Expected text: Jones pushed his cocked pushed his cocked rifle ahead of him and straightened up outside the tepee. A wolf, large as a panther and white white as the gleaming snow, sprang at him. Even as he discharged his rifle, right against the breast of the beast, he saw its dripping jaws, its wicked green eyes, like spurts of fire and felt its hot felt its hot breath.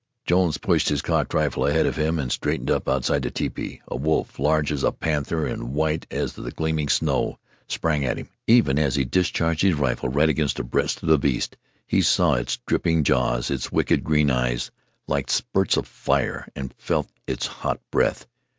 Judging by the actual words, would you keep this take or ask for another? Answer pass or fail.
fail